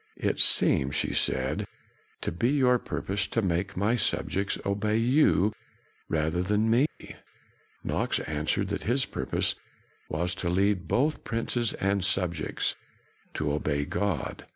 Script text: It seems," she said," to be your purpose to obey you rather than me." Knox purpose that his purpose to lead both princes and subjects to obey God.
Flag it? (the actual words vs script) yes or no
yes